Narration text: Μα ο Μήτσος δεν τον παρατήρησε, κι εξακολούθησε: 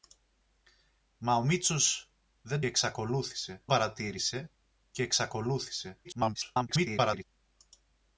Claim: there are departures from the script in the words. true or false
true